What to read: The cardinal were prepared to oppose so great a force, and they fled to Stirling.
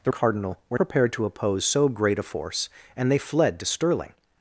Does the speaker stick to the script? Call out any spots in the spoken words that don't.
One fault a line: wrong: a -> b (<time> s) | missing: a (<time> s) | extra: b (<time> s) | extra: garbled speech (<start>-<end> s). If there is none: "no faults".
no faults